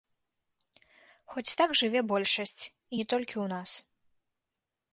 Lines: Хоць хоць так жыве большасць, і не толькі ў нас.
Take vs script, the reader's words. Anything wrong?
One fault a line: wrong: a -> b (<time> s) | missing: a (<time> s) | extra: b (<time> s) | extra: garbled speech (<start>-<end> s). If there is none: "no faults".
missing: хоць (1.6 s)